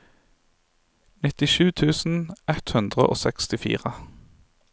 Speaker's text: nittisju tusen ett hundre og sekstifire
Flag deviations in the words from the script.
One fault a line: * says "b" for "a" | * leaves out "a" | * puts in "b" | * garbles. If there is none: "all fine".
all fine